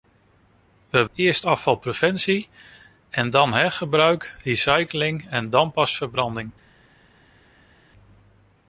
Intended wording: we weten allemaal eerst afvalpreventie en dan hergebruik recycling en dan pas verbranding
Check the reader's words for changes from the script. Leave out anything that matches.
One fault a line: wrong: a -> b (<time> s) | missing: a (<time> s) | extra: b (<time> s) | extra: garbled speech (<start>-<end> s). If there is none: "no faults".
missing: weten allemaal (1.1 s)